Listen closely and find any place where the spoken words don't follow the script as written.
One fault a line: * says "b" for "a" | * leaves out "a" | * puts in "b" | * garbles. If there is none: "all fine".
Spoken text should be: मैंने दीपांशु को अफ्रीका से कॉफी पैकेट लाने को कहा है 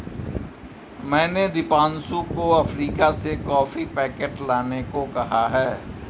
all fine